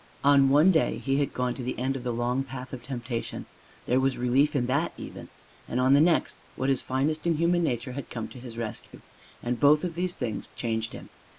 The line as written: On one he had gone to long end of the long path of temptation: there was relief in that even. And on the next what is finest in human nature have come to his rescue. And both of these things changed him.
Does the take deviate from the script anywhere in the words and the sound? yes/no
yes